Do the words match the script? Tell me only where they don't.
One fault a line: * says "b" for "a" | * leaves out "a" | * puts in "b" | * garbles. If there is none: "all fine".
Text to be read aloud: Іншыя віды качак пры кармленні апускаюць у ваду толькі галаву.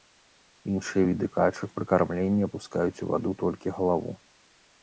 all fine